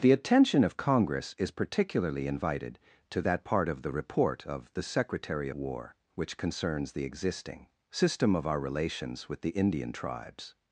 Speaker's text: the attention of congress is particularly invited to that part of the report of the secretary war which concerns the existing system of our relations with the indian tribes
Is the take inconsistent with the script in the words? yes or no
no